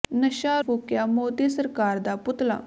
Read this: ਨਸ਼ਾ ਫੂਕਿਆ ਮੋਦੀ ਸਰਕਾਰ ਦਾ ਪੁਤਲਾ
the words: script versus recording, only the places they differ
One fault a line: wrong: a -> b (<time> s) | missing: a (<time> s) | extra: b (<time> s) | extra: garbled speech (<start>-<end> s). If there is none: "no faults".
no faults